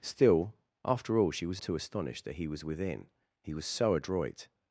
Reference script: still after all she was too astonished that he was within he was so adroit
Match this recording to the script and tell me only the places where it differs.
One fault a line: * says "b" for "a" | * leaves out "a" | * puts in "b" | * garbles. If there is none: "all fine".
all fine